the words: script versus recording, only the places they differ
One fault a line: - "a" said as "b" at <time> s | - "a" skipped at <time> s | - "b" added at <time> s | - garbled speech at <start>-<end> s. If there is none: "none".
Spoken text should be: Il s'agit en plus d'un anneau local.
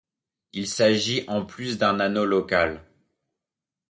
none